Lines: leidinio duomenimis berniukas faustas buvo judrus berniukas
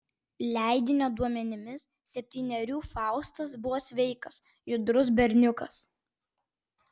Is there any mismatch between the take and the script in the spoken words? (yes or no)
yes